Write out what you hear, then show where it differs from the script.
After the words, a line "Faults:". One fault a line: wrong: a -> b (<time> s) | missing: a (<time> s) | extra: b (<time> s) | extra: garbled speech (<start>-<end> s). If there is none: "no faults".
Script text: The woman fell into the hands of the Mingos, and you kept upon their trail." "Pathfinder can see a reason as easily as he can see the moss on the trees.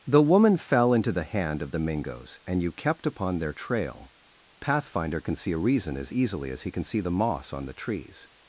The woman fell into the hand of the Mingos, and you kept upon their trail." "Pathfinder can see a reason as easily as he can see the moss on the trees.
Faults:
wrong: hands -> hand (1.2 s)